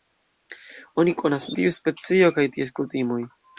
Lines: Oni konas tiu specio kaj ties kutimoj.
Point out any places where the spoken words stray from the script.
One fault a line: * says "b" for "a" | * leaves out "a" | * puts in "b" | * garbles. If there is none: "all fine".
all fine